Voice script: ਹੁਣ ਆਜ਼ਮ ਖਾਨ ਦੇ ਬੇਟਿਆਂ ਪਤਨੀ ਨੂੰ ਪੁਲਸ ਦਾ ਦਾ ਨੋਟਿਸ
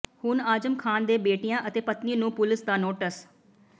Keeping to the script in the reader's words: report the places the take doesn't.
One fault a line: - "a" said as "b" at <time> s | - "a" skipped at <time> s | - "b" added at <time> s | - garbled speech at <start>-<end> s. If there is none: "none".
- "ਅਤੇ" added at 1.7 s
- "ਦਾ" skipped at 2.8 s